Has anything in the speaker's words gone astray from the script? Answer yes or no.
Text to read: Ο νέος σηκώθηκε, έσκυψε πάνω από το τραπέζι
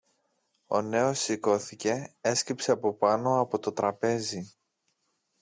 yes